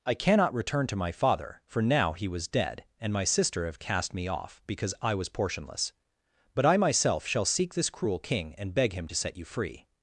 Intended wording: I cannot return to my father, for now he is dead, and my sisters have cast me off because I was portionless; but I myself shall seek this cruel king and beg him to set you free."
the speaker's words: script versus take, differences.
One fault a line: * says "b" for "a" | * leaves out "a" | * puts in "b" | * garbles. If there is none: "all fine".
* says "was" for "is"
* says "sister" for "sisters"